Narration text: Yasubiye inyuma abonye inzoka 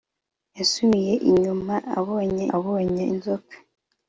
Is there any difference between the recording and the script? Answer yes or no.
yes